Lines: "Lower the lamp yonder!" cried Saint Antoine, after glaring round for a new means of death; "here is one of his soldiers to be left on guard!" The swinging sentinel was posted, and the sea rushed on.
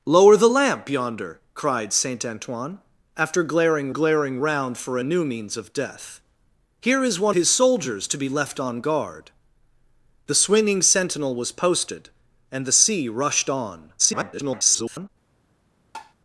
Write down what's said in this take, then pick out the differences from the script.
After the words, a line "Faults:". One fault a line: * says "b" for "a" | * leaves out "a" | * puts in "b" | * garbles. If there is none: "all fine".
"Lower the lamp yonder!" cried Saint Antoine, after glaring glaring round for a new means of death; "here is one his soldiers to be left on guard!" The swinging sentinel was posted, and the sea rushed on. [garbled]
Faults:
* puts in "glaring"
* leaves out "of"
* garbles